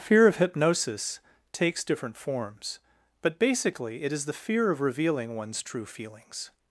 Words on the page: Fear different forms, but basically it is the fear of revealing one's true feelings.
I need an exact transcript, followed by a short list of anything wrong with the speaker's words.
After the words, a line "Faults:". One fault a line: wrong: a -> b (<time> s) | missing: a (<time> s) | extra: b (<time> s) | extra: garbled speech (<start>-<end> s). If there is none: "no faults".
Fear of hypnosis takes different forms, but basically it is the fear of revealing one's true feelings.
Faults:
extra: of hypnosis takes (0.2 s)